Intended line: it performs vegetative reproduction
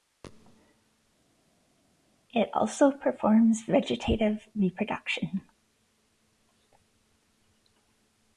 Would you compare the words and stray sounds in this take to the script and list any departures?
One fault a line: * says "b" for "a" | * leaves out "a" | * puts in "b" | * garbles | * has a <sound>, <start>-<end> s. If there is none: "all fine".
* puts in "also"